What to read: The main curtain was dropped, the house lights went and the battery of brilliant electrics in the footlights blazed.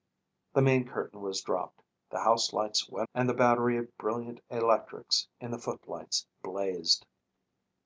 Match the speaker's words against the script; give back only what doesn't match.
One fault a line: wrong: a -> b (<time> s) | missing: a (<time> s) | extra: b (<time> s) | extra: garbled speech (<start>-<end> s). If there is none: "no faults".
no faults